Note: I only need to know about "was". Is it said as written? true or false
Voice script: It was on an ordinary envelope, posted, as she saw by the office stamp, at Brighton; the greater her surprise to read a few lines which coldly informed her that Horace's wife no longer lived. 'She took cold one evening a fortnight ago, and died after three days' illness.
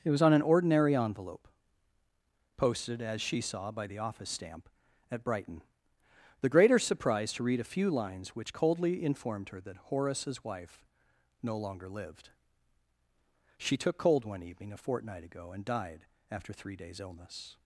true